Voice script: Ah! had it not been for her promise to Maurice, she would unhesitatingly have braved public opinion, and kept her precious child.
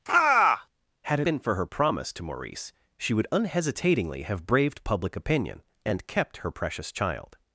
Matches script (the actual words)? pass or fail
fail